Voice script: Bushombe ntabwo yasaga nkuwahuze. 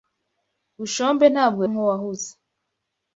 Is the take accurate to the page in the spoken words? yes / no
no